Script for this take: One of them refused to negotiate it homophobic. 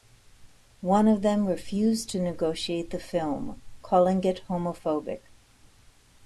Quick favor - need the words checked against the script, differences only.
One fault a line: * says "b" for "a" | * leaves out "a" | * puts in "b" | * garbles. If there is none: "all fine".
* puts in "the film calling"